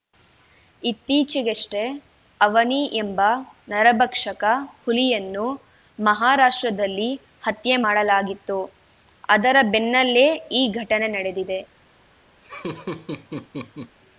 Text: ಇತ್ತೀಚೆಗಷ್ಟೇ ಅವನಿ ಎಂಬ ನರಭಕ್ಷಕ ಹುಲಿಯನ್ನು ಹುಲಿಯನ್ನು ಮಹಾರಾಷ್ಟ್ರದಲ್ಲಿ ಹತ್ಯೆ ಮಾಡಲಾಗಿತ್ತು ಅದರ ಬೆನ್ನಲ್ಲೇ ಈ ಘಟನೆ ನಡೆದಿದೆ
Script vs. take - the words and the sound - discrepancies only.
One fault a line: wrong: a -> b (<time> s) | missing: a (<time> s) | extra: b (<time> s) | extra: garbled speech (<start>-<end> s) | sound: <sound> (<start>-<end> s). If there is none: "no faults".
missing: ಹುಲಿಯನ್ನು (5.5 s)
sound: laugh (12.4-14.0 s)